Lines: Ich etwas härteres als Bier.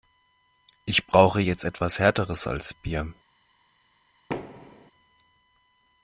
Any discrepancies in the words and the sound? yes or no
yes